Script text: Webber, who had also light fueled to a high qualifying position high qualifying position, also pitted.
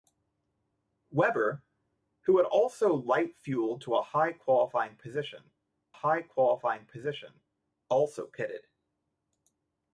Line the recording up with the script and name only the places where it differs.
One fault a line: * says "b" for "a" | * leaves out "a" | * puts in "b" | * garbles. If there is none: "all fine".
all fine